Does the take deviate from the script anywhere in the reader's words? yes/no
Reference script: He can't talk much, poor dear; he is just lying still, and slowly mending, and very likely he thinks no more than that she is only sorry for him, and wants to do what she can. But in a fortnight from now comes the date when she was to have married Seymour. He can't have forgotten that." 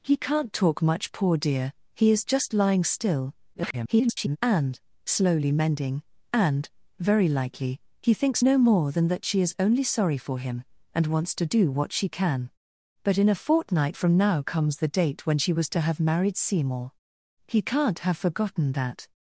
yes